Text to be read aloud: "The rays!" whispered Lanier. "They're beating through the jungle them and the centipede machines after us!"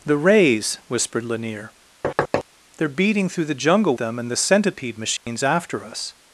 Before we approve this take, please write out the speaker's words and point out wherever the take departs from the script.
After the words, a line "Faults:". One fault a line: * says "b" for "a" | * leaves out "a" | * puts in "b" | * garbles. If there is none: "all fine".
"The rays!" whispered Lanier. "They're beating through the jungle them and the centipede machines after us!"
Faults:
all fine